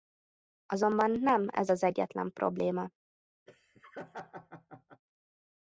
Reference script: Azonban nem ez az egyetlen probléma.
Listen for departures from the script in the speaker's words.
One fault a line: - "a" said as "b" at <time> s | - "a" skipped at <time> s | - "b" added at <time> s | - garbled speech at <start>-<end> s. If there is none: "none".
none